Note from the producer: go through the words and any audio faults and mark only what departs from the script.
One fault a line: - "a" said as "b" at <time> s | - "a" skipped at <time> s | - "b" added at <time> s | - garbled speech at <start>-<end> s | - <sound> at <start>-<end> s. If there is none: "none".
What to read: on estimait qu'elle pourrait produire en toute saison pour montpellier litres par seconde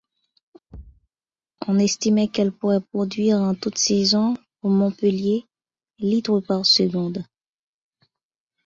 - thud at 0.7-1.1 s